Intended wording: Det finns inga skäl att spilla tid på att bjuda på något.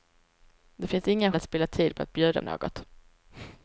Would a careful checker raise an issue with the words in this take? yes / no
yes